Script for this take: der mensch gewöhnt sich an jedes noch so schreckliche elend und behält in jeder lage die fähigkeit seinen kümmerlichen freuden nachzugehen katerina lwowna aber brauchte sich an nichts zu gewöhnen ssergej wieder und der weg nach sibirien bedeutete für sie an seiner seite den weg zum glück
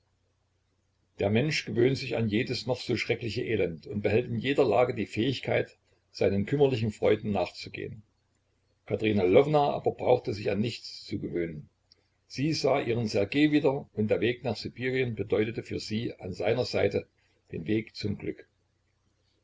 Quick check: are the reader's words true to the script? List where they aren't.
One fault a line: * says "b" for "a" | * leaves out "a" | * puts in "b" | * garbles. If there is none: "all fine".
* puts in "sie sah ihren"